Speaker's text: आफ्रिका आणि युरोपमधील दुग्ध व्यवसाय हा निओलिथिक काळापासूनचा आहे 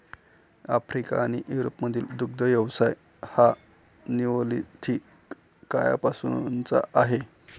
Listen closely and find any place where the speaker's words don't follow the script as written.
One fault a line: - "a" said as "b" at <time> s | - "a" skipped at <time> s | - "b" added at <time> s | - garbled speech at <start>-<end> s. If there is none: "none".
none